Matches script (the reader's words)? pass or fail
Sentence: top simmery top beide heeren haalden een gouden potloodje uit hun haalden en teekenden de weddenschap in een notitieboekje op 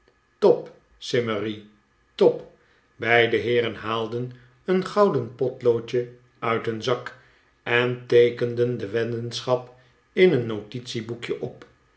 fail